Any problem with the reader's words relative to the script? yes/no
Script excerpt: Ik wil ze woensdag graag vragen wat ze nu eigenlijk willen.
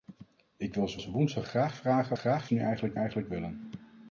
yes